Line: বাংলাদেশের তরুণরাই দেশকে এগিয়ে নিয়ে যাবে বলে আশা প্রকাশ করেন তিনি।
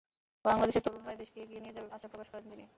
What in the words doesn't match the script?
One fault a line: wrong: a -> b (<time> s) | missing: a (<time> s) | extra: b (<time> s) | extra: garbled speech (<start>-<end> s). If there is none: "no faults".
missing: বলে (1.9 s)